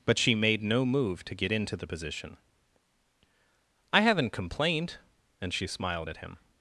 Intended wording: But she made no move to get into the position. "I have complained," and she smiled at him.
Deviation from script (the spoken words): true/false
true